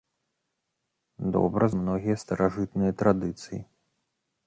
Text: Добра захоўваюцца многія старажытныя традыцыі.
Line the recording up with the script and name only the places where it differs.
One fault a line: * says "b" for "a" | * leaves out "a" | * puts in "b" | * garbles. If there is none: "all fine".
* leaves out "захоўваюцца"